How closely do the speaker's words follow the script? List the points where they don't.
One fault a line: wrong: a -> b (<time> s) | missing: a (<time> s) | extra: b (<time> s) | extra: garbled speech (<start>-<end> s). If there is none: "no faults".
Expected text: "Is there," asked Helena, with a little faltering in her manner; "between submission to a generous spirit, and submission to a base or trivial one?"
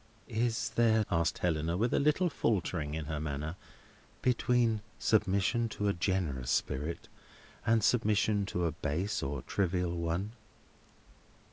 no faults